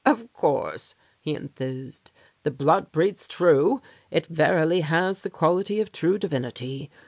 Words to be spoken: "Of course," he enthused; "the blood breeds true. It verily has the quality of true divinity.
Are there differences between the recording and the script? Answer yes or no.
no